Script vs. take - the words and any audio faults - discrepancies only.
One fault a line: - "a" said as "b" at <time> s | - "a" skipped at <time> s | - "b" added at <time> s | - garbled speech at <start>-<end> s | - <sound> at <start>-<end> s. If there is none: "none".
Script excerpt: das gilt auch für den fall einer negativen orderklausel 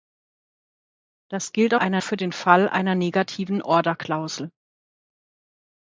- "auch" said as "einer" at 1.7 s